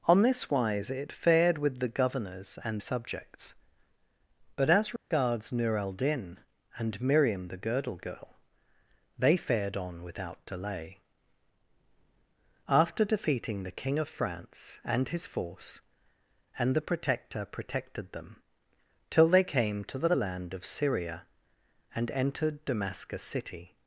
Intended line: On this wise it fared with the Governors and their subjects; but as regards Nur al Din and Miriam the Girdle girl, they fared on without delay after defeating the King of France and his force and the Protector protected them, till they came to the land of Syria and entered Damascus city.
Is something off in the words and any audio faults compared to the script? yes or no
yes